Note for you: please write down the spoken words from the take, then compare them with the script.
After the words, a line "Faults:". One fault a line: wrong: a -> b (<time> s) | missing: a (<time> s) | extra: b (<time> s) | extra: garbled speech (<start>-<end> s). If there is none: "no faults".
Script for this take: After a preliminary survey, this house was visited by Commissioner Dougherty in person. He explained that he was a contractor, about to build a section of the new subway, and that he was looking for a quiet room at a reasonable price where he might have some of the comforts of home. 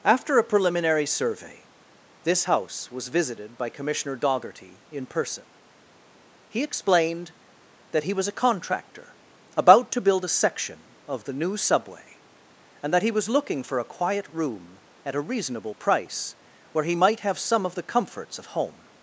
After a preliminary survey, this house was visited by Commissioner Dougherty in person. He explained that he was a contractor, about to build a section of the new subway, and that he was looking for a quiet room at a reasonable price where he might have some of the comforts of home.
Faults:
no faults